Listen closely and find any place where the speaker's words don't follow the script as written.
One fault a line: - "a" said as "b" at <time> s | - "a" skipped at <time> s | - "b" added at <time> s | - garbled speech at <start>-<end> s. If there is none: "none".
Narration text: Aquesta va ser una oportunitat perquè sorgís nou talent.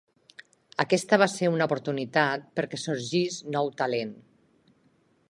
none